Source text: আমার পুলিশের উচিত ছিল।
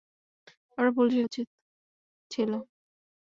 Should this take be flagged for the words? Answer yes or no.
no